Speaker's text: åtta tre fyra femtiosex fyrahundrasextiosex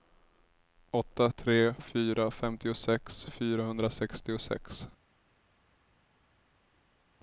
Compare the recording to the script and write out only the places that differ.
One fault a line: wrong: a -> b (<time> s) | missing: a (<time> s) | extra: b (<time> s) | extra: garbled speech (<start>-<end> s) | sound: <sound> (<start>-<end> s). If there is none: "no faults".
no faults